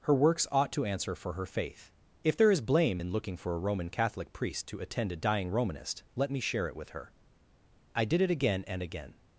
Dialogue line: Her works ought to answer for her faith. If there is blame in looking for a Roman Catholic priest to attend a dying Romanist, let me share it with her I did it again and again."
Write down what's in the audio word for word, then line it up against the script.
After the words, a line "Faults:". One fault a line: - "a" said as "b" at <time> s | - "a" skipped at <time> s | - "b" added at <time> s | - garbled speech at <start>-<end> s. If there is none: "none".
Her works ought to answer for her faith. If there is blame in looking for a Roman Catholic priest to attend a dying Romanist, let me share it with her I did it again and again."
Faults:
none